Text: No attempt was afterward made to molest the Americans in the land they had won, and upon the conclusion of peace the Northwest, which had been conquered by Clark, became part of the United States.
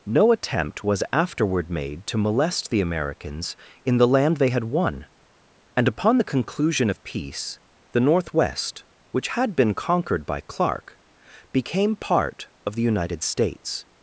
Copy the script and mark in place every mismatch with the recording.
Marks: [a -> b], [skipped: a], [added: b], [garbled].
No attempt was afterward made to molest the Americans in the land they had won, and upon the conclusion of peace the Northwest, which had been conquered by Clark, became part of the United States.